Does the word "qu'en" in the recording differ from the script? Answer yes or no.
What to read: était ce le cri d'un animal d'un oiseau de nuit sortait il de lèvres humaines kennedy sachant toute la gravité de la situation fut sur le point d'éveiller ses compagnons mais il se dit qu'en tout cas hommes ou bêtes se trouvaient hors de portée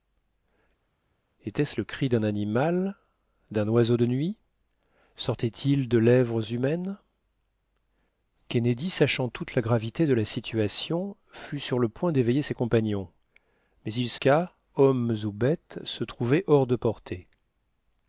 yes